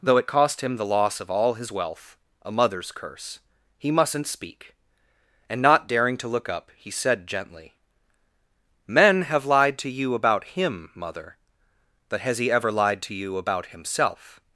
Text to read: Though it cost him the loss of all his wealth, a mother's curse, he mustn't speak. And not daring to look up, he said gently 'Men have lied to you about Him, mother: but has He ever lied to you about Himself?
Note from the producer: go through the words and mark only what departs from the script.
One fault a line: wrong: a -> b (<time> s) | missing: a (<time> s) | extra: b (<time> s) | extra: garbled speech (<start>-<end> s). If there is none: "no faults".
no faults